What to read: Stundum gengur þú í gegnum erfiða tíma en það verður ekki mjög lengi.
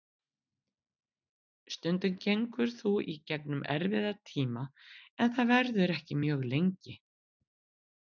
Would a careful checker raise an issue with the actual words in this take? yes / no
no